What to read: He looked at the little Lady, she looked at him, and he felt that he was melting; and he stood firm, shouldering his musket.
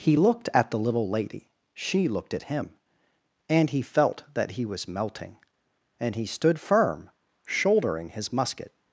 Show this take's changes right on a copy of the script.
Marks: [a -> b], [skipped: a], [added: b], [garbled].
He looked at the little Lady, she looked at him, and he felt that he was melting; and he stood firm, shouldering his musket.